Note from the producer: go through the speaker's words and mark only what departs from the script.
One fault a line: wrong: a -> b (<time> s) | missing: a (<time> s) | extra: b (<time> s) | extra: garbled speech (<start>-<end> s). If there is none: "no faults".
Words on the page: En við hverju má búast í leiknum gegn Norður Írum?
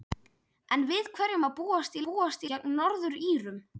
wrong: leiknum -> búast (2.0 s)